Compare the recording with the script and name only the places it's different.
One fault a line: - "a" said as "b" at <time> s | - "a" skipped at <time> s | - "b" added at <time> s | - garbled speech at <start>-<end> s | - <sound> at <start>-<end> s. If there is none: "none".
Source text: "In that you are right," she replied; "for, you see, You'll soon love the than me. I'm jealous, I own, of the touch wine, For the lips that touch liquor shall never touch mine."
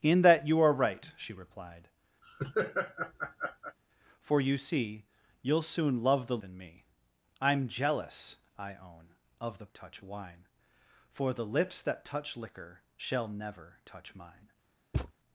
- laugh at 2.2-3.8 s
- thud at 14.9-15.1 s